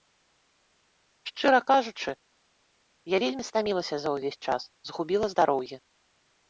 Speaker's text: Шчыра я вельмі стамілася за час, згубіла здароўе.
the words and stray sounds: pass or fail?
fail